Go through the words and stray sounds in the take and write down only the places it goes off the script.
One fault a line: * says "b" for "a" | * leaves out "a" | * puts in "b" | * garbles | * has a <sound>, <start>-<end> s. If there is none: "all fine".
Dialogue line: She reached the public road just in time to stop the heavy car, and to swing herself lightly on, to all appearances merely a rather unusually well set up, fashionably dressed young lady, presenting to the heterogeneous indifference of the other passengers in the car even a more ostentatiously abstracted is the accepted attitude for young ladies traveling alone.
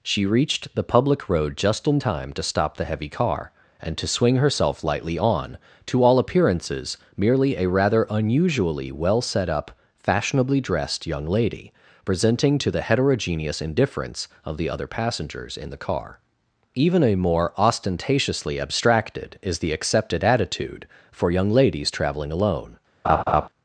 * has a laugh, 23.0-23.5 s